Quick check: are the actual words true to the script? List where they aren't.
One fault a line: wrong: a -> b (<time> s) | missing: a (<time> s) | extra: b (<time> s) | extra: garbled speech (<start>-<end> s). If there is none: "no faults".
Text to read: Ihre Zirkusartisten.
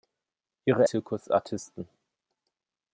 no faults